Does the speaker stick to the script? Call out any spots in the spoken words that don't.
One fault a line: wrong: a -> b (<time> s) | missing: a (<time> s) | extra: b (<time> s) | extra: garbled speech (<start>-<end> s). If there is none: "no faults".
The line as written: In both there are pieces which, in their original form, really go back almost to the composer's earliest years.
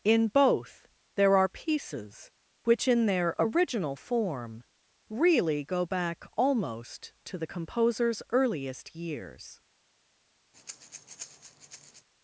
no faults